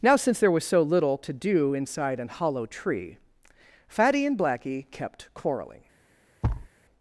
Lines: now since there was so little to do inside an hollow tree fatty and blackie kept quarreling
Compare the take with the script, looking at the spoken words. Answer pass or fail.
pass